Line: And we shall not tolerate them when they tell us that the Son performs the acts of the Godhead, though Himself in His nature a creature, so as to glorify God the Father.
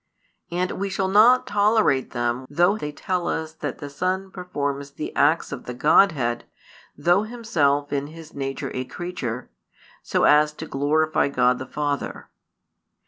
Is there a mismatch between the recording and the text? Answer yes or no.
yes